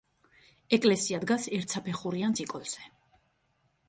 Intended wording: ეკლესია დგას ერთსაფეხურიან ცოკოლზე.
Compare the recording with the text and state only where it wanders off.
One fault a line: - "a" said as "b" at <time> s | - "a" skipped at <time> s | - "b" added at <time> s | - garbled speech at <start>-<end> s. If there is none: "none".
none